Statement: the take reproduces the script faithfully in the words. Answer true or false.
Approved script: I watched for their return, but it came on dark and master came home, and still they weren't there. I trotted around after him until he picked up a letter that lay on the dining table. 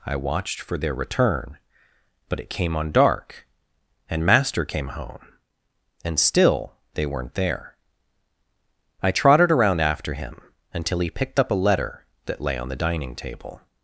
true